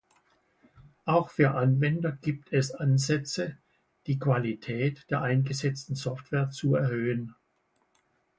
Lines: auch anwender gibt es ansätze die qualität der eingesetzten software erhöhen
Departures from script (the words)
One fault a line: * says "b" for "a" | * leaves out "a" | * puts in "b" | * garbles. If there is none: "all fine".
* puts in "für"
* puts in "zu"